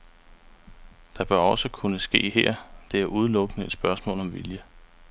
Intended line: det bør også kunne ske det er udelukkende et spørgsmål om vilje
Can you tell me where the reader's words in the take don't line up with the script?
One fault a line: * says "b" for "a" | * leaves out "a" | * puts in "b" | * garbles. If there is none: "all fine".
* puts in "her"